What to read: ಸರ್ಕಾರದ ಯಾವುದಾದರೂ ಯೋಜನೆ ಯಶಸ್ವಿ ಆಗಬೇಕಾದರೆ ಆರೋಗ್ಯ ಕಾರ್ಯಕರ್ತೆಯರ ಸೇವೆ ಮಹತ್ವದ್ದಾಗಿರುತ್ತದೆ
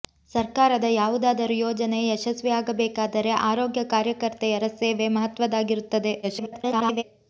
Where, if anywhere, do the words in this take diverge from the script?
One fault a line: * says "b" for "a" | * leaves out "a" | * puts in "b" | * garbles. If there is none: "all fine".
* garbles